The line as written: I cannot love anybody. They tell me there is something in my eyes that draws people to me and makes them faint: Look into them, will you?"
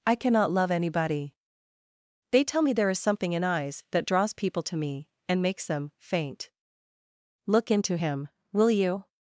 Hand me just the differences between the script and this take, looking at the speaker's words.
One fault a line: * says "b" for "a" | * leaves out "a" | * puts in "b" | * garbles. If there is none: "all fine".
* leaves out "my"
* says "him" for "them"